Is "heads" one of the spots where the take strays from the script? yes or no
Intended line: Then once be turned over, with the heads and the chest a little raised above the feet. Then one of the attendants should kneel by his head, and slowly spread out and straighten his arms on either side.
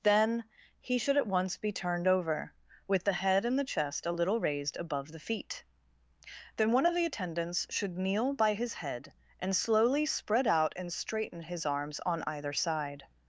yes